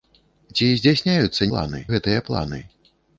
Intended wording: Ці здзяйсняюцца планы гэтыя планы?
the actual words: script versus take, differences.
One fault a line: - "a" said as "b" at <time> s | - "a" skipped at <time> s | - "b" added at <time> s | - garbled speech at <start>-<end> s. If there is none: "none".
none